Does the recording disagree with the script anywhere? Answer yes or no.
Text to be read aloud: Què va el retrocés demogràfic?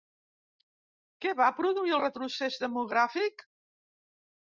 yes